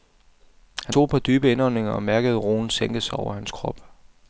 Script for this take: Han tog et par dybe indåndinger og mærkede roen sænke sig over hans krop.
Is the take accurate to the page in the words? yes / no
yes